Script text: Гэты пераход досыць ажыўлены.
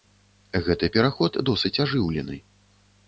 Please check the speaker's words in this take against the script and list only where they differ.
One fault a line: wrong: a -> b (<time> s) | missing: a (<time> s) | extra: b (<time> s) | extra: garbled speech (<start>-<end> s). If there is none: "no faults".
no faults